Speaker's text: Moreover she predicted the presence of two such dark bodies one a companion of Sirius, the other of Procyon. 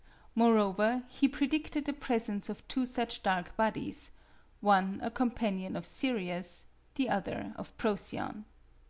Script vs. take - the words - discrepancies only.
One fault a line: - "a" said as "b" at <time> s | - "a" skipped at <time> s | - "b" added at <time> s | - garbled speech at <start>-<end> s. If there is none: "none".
- "she" said as "he" at 1.1 s